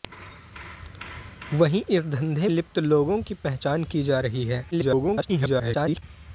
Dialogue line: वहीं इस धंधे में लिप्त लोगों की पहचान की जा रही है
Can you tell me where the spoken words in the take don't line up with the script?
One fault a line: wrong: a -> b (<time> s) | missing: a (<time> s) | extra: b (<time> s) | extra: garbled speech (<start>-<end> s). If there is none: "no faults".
missing: में (2.5 s)
extra: garbled speech (4.7-6.0 s)